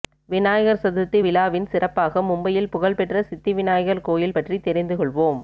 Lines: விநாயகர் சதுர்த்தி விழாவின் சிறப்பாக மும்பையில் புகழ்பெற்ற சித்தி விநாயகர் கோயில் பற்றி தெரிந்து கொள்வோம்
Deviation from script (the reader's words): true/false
false